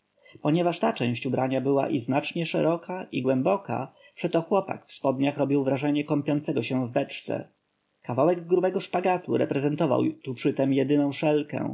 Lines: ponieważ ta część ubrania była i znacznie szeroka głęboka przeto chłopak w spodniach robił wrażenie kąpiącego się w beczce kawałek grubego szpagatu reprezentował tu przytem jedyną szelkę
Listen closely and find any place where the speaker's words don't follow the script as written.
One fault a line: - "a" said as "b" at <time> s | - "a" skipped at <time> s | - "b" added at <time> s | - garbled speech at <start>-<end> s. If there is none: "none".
- "i" added at 3.1 s